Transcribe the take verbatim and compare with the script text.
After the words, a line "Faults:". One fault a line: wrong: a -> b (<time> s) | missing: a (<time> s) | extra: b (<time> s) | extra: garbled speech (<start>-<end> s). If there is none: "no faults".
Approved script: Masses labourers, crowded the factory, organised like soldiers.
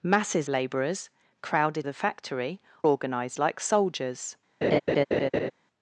Masses labourers, crowded the factory, organised like soldiers.
Faults:
no faults